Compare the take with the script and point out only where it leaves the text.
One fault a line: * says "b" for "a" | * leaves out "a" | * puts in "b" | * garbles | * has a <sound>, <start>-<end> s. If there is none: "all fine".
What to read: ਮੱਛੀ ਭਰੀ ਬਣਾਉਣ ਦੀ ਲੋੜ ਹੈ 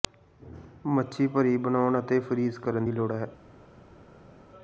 * puts in "ਅਤੇ ਫਰੀਜ਼ ਕਰਨ"